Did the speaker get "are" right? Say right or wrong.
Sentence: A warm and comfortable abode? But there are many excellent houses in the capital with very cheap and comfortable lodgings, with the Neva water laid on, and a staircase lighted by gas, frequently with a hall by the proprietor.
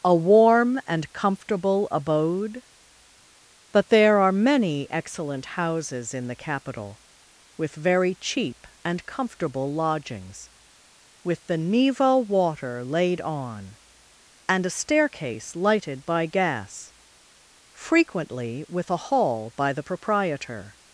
right